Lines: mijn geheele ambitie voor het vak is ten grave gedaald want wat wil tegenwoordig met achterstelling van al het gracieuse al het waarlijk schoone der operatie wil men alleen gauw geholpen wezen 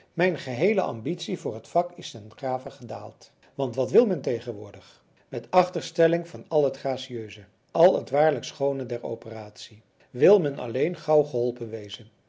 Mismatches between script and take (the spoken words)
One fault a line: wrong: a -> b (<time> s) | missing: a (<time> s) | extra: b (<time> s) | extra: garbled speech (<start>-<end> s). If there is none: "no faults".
extra: men (4.0 s)